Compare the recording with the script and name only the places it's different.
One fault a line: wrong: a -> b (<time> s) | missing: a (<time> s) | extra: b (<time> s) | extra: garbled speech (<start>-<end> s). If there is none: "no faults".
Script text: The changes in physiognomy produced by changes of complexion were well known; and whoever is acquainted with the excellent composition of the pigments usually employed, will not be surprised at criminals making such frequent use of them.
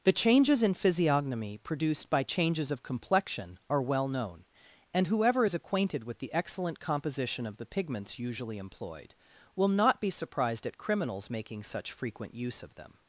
wrong: were -> are (3.7 s)